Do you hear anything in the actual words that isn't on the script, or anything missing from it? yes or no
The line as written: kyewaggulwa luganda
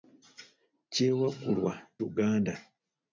no